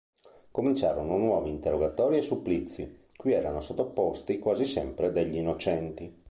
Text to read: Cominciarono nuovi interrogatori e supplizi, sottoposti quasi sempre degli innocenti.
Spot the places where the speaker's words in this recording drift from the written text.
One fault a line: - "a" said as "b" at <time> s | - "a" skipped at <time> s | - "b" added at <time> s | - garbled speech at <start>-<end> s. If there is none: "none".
- "cui erano" added at 3.2 s